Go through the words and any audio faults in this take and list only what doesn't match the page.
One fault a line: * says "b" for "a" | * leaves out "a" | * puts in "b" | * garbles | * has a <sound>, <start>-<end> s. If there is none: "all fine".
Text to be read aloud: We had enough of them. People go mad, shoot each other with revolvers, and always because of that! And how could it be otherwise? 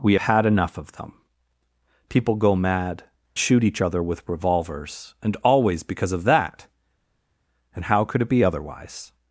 all fine